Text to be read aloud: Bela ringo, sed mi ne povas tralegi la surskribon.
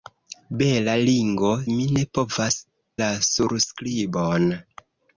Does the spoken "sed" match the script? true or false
false